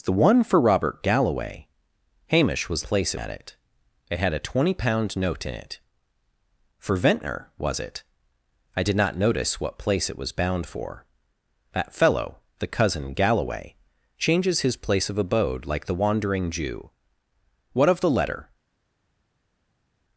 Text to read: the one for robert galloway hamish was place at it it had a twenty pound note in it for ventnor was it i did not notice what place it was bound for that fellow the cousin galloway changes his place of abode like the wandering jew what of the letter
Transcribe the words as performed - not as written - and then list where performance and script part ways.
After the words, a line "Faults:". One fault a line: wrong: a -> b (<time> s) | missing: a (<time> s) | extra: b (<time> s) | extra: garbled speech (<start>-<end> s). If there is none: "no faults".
the one for robert galloway hamish was place at it it had a twenty pound note in it for ventnor was it i did not notice what place it was bound for that fellow the cousin galloway changes his place of abode like the wandering jew what of the letter
Faults:
no faults